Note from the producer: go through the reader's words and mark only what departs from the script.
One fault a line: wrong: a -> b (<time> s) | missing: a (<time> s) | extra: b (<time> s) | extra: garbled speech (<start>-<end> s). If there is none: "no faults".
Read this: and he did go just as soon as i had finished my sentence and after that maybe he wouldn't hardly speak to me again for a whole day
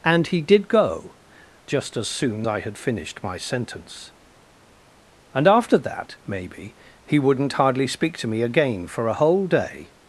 missing: as (2.5 s)